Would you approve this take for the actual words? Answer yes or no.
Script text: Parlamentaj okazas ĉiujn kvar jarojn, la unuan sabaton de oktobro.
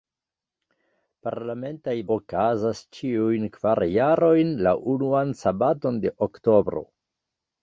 yes